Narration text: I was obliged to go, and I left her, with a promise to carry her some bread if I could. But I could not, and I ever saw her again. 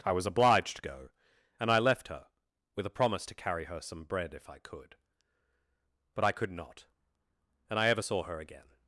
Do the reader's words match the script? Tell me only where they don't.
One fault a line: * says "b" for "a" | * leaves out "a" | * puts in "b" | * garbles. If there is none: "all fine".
all fine